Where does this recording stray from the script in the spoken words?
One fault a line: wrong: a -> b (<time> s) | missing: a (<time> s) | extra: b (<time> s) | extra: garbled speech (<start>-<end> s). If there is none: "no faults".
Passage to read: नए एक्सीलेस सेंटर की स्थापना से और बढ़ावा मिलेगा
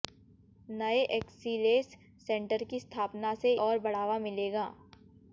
no faults